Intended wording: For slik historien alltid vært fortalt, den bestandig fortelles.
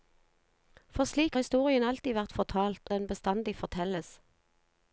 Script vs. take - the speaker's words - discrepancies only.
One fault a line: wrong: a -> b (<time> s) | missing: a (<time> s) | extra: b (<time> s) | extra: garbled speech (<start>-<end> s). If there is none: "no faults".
no faults